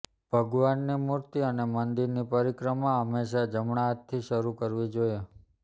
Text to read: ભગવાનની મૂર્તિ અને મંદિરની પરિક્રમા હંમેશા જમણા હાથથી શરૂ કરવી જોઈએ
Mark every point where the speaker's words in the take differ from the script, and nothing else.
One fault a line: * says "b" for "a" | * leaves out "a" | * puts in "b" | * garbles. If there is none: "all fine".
all fine